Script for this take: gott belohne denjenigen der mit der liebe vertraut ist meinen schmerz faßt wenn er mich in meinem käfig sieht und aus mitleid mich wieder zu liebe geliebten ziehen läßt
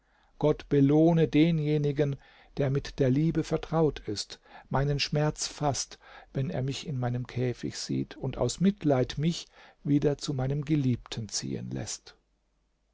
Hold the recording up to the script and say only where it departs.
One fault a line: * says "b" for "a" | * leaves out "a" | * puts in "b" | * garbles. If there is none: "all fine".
* says "meinem" for "liebe"